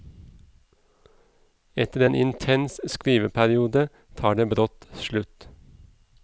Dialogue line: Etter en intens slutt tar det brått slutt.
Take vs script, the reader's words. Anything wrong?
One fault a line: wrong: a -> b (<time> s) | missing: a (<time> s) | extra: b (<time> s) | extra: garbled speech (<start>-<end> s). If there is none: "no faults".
wrong: slutt -> skriveperiode (2.9 s)